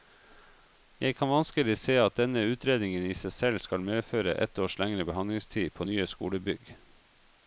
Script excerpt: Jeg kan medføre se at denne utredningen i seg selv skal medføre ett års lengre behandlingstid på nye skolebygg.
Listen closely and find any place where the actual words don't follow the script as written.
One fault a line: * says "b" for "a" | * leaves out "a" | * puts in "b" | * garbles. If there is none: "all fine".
* says "vanskelig" for "medføre"